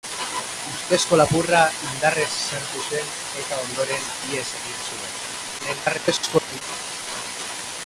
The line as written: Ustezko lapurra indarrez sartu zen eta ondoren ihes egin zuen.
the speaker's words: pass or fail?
fail